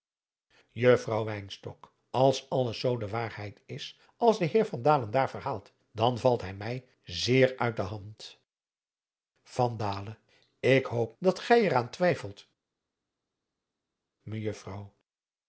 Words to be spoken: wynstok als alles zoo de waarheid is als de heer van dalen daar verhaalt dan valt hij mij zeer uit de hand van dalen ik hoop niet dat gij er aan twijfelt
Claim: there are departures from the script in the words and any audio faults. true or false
true